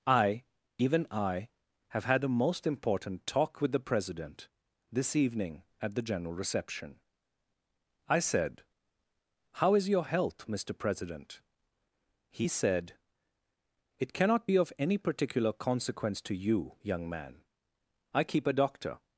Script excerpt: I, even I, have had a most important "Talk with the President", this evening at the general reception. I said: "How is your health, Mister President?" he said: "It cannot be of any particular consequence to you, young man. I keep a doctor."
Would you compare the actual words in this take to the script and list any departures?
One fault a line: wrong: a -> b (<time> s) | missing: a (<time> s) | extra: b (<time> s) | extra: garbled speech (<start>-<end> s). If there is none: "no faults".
no faults